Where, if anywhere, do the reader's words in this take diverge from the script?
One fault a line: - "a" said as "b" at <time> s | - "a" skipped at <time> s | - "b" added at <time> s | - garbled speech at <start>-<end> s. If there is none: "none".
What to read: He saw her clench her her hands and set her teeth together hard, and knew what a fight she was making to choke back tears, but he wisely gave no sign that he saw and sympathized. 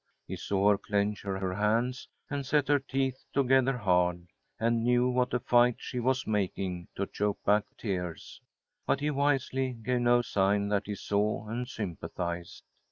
none